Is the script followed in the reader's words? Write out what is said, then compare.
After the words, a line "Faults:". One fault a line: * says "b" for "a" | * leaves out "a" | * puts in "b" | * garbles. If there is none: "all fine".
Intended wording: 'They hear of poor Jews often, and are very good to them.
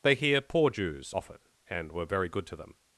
'They hear poor Jews often, and were very good to them.
Faults:
* leaves out "of"
* says "were" for "are"